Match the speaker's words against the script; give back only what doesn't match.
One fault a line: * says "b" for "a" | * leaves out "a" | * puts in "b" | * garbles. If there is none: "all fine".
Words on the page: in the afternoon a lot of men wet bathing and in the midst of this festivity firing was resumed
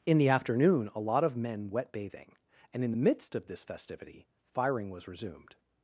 all fine